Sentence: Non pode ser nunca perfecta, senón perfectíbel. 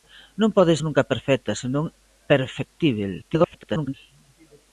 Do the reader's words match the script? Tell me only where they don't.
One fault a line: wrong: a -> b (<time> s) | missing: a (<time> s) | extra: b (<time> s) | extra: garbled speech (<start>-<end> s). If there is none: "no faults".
missing: ser (0.7 s)
extra: garbled speech (3.2-3.9 s)